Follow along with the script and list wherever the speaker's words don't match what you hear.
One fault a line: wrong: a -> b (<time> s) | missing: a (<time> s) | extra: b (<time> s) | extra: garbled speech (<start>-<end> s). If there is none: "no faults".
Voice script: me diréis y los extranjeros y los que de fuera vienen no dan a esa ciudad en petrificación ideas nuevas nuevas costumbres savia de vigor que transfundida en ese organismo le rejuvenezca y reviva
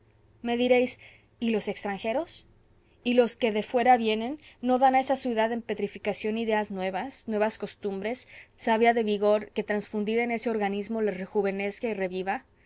no faults